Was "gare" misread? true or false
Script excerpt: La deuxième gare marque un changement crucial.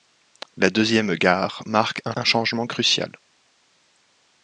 false